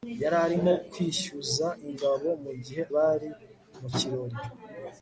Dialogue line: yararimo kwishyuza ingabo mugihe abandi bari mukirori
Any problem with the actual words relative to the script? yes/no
yes